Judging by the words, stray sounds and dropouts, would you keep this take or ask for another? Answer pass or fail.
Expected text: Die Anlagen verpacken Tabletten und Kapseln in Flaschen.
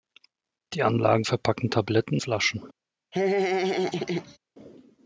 fail